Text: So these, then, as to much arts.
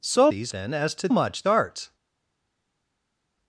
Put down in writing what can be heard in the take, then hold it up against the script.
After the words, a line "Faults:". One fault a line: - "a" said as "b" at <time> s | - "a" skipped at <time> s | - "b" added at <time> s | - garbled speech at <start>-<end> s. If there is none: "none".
So these, then, as to much arts.
Faults:
none